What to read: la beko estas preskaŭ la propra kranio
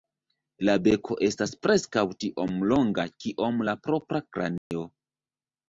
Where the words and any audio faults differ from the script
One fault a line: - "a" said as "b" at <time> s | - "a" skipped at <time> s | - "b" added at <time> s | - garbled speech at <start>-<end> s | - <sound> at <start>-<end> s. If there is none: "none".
- "tiom longa kiom" added at 2.2 s
- dropout at 4.6-4.7 s